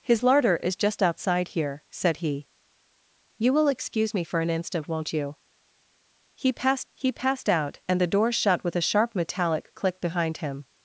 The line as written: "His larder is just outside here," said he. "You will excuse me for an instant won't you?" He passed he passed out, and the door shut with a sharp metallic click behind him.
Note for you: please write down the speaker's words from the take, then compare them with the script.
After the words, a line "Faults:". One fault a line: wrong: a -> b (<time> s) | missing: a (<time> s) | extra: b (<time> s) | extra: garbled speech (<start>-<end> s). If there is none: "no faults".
"His larder is just outside here," said he. "You will excuse me for an instant won't you?" He passed he passed out, and the door shut with a sharp metallic click behind him.
Faults:
no faults